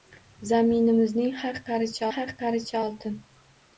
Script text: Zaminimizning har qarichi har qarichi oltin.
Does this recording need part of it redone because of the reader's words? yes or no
no